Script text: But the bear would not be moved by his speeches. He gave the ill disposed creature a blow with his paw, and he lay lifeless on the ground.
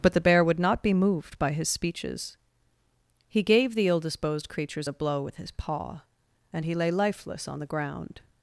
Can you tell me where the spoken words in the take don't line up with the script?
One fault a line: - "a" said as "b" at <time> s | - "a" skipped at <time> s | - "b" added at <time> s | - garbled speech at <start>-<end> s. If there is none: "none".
- "creature" said as "creatures" at 4.5 s